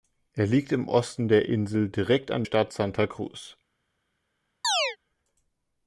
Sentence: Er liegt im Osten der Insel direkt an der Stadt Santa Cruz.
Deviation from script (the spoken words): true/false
true